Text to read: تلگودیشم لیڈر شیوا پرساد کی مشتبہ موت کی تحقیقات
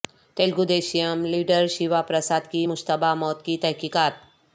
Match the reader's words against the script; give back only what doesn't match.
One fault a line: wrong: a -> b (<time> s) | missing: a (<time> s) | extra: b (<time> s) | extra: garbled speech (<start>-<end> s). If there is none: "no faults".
no faults